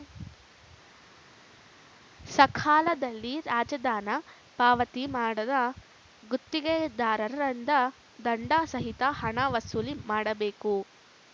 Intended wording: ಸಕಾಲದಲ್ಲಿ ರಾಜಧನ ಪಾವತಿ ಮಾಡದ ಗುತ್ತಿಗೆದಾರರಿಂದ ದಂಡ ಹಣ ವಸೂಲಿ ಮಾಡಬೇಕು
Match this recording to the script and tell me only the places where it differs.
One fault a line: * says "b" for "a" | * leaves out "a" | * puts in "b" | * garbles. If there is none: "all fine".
* puts in "ಸಹಿತ"